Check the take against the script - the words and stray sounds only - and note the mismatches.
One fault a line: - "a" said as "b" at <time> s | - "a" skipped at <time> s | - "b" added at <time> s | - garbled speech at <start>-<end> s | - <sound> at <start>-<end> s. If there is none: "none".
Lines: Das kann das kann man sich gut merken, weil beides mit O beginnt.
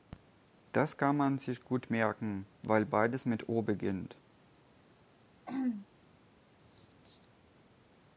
- "das kann" skipped at 1.2 s
- throat clearing at 5.5-5.9 s